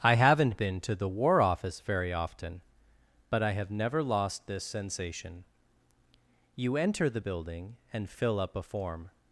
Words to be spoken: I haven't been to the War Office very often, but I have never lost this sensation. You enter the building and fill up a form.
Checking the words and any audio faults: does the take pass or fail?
pass